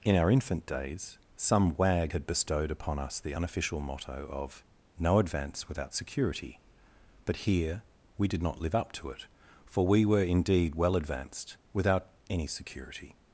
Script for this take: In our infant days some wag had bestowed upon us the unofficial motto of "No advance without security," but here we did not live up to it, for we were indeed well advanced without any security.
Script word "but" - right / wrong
right